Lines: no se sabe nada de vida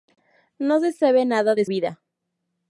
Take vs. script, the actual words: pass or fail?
pass